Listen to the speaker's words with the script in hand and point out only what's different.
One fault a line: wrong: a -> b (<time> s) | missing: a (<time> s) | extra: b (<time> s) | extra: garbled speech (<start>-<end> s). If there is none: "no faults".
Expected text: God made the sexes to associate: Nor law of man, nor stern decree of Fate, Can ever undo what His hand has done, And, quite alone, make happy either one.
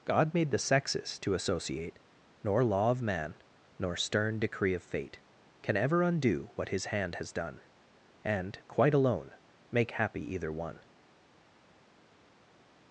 no faults